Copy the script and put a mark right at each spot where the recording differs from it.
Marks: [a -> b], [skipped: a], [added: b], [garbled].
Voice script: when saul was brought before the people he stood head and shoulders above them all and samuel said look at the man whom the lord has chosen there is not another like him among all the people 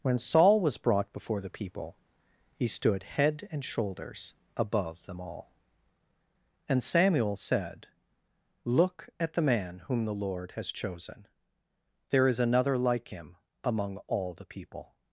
when saul was brought before the people he stood head and shoulders above them all and samuel said look at the man whom the lord has chosen there is [skipped: not] another like him among all the people